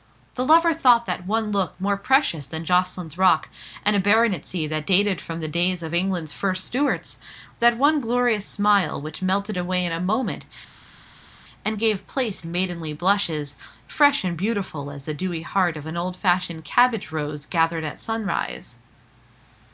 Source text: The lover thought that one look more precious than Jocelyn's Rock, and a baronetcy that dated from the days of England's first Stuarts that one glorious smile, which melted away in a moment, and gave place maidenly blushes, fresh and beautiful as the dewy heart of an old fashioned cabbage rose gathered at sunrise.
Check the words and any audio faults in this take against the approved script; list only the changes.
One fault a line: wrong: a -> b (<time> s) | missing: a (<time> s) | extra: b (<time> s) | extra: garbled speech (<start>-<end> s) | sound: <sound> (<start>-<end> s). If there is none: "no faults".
no faults